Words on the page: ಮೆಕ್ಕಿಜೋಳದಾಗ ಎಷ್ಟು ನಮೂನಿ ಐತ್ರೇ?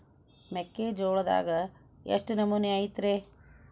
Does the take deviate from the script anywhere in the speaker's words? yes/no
no